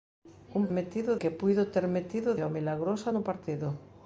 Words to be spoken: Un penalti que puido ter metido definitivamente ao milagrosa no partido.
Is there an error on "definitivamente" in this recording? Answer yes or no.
yes